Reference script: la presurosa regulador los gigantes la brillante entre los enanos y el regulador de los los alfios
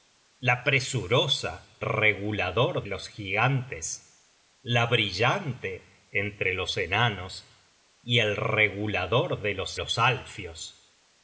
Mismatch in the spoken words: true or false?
false